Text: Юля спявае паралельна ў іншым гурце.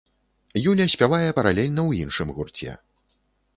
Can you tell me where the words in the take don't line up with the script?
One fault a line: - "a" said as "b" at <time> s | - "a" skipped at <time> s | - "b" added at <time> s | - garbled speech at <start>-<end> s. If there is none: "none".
none